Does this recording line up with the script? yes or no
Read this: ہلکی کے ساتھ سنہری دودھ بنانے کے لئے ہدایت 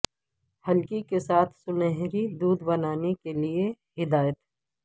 yes